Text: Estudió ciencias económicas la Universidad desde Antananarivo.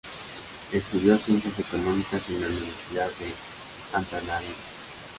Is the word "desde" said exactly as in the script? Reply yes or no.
no